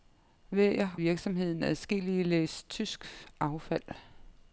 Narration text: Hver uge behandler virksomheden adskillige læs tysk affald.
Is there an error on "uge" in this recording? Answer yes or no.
yes